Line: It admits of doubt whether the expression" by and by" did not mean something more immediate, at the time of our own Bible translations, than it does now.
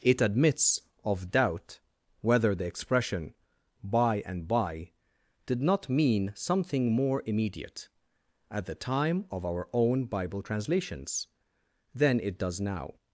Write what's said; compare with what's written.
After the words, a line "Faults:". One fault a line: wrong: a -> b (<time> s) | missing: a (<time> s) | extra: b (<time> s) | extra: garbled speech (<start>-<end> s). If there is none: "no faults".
It admits of doubt whether the expression" by and by" did not mean something more immediate, at the time of our own Bible translations, than it does now.
Faults:
no faults